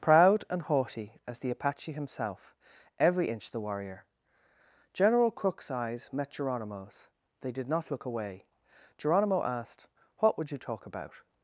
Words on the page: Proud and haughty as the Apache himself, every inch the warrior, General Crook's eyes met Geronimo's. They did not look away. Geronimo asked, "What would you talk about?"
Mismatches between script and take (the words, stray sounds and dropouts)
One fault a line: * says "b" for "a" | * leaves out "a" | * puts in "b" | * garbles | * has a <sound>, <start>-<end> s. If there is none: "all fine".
all fine